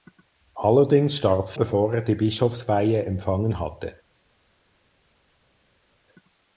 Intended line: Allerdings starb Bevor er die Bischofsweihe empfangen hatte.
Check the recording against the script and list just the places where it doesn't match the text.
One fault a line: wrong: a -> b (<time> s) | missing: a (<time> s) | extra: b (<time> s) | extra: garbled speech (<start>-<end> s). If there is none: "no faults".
no faults